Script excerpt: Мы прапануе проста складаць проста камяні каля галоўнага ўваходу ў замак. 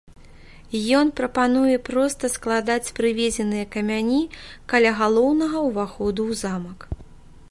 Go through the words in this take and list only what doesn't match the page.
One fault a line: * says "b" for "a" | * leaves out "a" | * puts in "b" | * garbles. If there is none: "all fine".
* says "Ён" for "Мы"
* says "прывезеныя" for "проста"